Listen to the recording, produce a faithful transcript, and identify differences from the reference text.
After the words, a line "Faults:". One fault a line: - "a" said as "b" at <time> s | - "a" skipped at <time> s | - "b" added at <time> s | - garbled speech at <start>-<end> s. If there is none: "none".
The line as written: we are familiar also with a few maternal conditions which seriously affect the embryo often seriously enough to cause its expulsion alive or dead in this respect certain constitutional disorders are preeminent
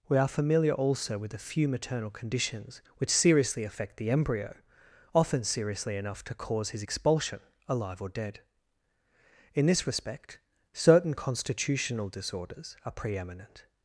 we are familiar also with a few maternal conditions which seriously affect the embryo often seriously enough to cause his expulsion alive or dead in this respect certain constitutional disorders are preeminent
Faults:
- "its" said as "his" at 6.7 s